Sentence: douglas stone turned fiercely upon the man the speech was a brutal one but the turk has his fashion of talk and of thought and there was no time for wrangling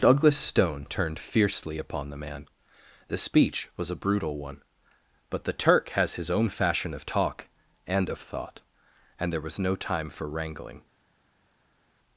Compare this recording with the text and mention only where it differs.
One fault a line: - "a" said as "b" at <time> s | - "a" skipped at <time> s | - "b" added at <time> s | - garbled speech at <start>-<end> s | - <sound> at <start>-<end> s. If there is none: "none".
- "own" added at 6.3 s